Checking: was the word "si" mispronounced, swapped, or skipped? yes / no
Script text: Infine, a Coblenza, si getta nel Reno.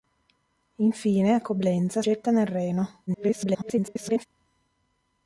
yes